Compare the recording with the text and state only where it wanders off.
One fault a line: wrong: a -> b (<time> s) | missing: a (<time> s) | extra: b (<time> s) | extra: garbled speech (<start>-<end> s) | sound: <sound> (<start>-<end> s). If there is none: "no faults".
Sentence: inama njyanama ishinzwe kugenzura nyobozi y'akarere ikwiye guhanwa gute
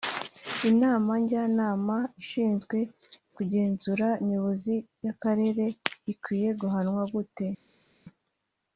no faults